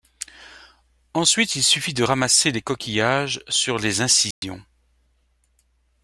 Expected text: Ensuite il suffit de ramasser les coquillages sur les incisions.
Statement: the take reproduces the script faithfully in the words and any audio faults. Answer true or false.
false